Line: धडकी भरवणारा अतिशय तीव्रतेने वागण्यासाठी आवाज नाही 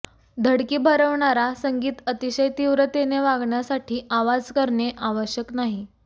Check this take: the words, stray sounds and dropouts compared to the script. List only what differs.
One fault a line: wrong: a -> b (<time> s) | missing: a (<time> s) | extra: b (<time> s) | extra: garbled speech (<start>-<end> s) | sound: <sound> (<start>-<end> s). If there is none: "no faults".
extra: संगीत (1.6 s)
extra: करणे आवश्यक (4.5 s)